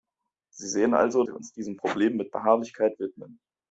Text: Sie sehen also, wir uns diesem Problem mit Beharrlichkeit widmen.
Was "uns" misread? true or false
false